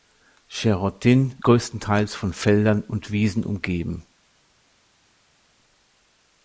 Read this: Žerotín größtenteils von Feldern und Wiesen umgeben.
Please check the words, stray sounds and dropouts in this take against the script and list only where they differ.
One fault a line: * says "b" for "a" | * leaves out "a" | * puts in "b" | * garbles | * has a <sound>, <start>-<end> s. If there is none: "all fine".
all fine